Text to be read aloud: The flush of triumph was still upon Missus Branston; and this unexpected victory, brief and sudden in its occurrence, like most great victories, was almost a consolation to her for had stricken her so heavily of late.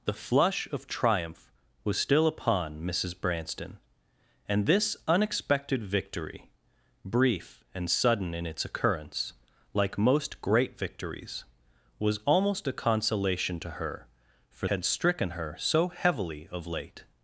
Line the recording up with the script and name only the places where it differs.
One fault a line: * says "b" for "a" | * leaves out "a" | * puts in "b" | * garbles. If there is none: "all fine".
all fine